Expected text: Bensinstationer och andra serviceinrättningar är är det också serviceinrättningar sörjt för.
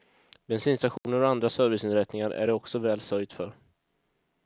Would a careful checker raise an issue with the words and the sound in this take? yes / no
yes